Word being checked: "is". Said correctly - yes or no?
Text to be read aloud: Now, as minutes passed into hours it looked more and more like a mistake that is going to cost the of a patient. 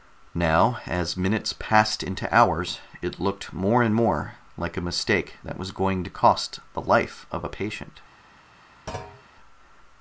no